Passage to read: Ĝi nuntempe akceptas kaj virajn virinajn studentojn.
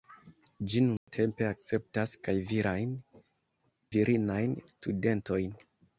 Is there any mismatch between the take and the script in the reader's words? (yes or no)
no